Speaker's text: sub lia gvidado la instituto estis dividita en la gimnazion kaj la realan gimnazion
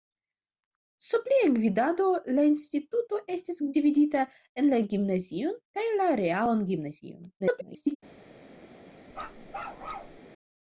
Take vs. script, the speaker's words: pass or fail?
fail